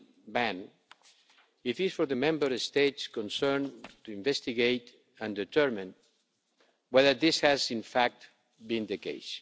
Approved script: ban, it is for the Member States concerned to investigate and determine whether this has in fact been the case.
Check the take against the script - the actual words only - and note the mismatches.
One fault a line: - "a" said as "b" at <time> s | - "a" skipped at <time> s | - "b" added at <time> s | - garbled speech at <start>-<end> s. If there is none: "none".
none